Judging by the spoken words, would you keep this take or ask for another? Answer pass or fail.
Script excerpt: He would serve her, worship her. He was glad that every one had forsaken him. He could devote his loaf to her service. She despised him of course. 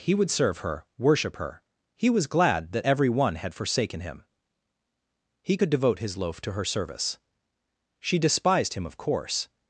pass